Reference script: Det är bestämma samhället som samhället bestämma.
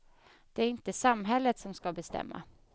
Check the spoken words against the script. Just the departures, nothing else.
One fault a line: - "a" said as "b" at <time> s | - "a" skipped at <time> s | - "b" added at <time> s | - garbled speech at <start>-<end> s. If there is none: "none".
- "bestämma" said as "inte" at 0.7 s
- "samhället" said as "ska" at 1.7 s